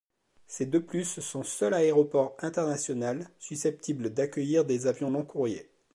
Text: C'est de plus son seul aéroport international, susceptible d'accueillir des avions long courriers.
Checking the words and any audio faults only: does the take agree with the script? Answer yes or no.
yes